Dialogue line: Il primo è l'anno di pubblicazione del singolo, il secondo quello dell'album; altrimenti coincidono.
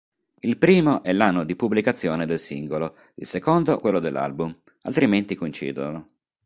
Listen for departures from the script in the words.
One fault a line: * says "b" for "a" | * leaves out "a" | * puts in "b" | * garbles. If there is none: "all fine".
all fine